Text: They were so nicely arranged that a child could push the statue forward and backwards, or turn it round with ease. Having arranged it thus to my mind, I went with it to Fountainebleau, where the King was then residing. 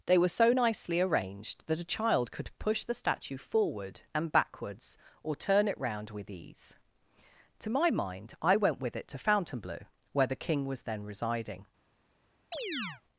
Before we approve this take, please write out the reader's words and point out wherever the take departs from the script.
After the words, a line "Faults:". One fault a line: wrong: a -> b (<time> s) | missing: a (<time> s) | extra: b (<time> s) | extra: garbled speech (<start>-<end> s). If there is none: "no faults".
They were so nicely arranged that a child could push the statue forward and backwards, or turn it round with ease. to my mind, I went with it to Fountainebleau, where the King was then residing.
Faults:
missing: Having arranged it thus (6.8 s)